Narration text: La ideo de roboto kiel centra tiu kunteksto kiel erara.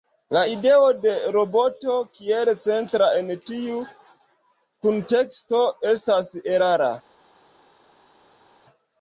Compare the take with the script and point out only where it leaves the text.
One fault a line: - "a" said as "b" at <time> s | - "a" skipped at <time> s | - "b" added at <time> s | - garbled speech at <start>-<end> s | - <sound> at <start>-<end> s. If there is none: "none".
- "en" added at 3.2 s
- "kiel" said as "estas" at 6.0 s